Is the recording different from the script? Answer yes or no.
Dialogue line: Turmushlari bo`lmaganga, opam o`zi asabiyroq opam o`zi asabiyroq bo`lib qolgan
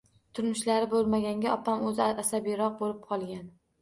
yes